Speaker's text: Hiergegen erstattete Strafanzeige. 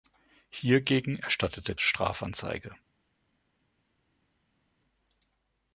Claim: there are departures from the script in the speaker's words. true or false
false